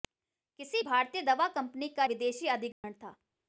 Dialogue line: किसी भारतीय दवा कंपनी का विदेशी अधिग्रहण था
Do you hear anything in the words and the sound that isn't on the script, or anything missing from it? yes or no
yes